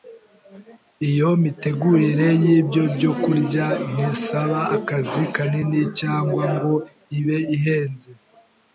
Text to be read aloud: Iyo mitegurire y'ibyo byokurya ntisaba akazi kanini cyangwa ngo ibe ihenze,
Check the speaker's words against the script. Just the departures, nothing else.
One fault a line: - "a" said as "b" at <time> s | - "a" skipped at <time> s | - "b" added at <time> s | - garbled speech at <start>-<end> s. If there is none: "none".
none